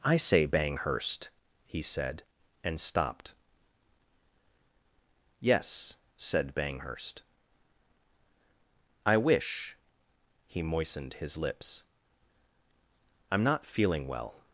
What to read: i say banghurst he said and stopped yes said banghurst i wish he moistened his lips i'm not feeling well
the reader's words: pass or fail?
pass